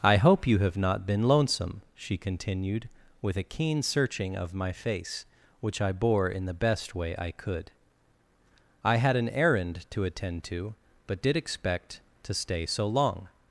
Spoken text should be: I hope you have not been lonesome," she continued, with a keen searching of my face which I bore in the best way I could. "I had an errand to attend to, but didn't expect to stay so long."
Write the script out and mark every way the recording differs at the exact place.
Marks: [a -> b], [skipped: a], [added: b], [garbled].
I hope you have not been lonesome," she continued, with a keen searching of my face which I bore in the best way I could. "I had an errand to attend to, but [didn't -> did] expect to stay so long."